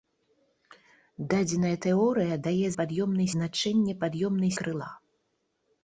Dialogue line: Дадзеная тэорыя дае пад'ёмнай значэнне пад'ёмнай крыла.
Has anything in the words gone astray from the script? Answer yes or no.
no